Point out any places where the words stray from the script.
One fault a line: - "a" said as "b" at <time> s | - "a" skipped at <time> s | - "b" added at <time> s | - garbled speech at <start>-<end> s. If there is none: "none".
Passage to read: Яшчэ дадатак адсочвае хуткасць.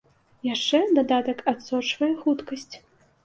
none